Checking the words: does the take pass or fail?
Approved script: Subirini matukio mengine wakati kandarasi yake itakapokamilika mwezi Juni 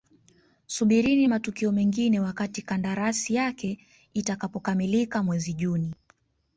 pass